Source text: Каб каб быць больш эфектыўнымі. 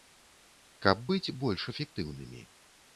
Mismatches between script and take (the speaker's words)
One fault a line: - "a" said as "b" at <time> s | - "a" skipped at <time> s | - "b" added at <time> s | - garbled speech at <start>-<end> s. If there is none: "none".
- "каб" skipped at 1.1 s